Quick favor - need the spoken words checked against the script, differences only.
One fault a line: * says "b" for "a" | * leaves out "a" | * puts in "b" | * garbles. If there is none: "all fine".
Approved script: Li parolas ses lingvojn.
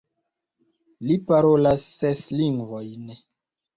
all fine